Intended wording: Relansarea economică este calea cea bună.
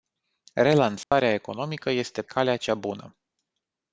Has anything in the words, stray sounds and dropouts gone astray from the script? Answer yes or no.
yes